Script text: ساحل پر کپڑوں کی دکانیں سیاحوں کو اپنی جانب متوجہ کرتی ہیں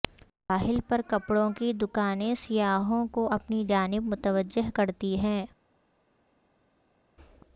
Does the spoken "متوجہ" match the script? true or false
true